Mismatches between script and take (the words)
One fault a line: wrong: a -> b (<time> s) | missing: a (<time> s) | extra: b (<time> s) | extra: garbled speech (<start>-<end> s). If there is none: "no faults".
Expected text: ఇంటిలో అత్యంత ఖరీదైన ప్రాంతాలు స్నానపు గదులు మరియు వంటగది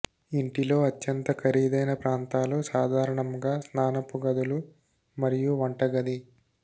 extra: సాధారణంగా (2.7 s)